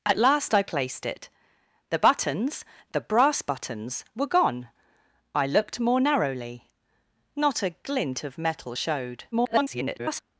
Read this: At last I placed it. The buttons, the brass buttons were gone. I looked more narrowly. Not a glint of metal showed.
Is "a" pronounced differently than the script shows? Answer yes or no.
no